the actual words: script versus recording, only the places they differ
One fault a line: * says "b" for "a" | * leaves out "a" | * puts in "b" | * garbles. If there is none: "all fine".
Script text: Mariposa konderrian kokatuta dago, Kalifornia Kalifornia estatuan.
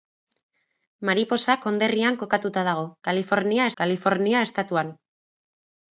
all fine